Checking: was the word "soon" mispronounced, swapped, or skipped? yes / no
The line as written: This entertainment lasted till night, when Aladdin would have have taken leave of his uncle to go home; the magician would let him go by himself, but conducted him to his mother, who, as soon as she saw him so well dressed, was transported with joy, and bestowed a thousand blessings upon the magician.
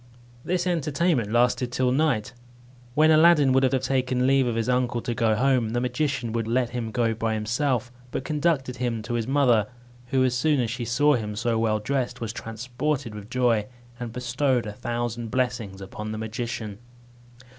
no